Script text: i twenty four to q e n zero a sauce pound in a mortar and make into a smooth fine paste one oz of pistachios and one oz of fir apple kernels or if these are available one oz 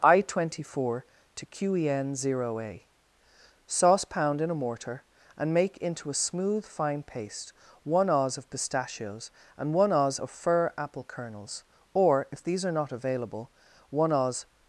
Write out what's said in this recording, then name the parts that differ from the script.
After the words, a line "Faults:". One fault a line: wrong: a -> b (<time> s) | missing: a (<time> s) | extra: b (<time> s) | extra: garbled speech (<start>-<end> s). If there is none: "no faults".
i twenty four to q e n zero a sauce pound in a mortar and make into a smooth fine paste one oz of pistachios and one oz of fir apple kernels or if these are not available one oz
Faults:
extra: not (12.7 s)